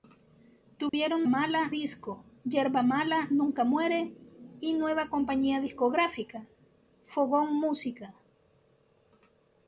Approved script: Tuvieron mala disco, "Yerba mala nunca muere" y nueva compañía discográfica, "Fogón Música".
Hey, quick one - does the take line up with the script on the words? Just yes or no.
yes